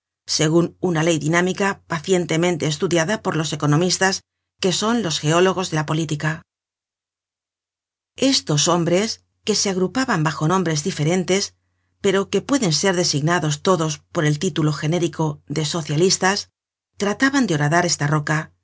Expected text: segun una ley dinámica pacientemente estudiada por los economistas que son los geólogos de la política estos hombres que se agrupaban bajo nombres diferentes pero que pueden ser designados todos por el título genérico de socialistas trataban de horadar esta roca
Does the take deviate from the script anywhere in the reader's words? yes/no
no